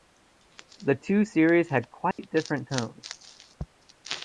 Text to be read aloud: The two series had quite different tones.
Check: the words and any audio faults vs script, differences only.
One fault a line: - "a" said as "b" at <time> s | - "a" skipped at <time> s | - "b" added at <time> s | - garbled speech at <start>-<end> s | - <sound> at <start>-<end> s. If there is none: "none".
- dropout at 2.1-2.2 s